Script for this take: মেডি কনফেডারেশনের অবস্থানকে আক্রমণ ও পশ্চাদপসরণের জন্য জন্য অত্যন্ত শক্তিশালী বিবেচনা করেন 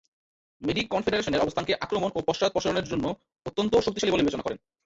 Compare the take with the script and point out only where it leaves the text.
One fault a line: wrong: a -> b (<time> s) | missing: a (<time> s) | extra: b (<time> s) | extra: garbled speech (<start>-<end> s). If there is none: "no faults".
missing: জন্য (3.0 s)
extra: বলে (4.1 s)